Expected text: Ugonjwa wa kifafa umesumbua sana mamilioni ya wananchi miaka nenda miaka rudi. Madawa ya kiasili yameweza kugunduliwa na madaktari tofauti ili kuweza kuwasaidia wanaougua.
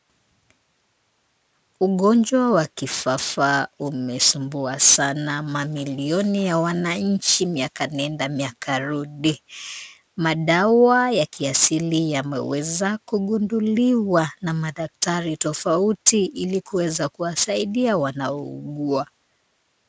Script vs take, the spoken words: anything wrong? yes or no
no